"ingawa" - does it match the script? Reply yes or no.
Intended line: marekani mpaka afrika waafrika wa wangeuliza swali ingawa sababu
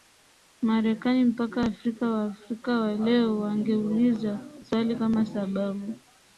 no